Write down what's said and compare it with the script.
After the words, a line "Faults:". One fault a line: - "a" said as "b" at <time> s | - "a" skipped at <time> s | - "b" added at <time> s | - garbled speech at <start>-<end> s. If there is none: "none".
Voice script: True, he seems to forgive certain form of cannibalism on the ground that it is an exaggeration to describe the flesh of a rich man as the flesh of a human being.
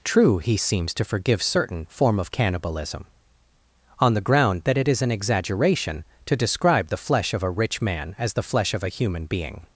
True, he seems to forgive certain form of cannibalism on the ground that it is an exaggeration to describe the flesh of a rich man as the flesh of a human being.
Faults:
none